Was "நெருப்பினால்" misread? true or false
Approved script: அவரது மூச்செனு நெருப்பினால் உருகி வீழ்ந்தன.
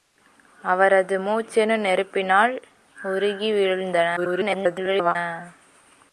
false